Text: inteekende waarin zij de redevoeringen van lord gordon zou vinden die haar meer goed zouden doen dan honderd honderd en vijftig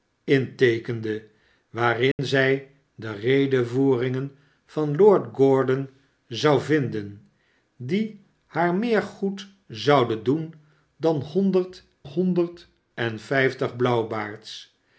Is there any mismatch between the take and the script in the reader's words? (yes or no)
no